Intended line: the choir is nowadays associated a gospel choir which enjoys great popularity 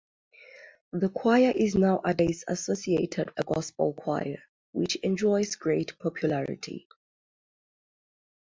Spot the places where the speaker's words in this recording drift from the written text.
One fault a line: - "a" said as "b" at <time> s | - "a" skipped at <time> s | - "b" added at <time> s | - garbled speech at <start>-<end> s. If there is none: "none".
none